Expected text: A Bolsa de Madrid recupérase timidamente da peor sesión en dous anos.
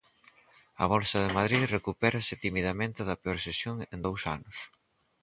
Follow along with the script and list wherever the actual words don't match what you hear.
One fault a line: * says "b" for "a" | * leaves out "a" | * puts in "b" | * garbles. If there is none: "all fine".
all fine